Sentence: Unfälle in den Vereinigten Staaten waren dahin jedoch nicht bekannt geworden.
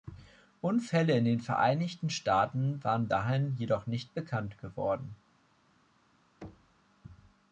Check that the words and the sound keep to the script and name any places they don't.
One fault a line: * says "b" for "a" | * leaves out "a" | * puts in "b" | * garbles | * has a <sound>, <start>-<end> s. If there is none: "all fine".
* has a thud, 6.4-6.8 s